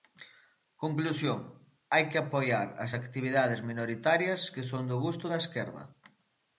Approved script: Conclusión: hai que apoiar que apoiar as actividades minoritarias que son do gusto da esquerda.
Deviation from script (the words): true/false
true